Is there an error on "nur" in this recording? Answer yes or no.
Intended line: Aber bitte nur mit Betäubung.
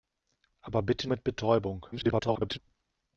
yes